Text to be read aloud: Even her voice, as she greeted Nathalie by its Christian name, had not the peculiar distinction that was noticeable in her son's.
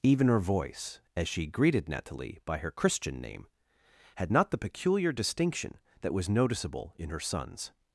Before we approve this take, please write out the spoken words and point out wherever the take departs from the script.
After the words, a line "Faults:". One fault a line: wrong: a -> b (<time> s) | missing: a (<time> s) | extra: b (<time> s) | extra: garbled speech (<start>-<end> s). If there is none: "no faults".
Even her voice, as she greeted Nathalie by her Christian name, had not the peculiar distinction that was noticeable in her son's.
Faults:
wrong: its -> her (2.6 s)